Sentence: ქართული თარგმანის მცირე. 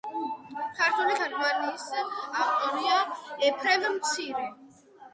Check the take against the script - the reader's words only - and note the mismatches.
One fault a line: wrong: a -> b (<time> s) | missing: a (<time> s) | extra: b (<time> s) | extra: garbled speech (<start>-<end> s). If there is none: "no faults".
extra: ავტორია ეფრემ (2.4 s)